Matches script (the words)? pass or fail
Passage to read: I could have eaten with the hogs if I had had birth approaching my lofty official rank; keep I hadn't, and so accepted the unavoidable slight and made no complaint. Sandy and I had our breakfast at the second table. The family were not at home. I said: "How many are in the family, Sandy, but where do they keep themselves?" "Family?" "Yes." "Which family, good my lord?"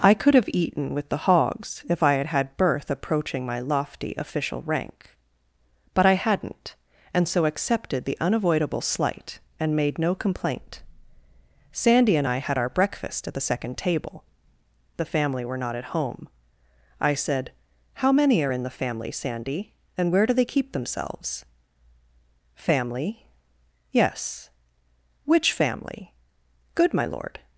fail